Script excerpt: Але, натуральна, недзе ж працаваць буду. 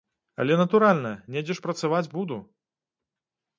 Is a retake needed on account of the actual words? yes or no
no